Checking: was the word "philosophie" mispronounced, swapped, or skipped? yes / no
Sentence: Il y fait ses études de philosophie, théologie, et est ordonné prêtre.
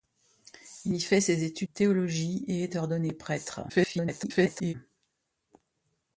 yes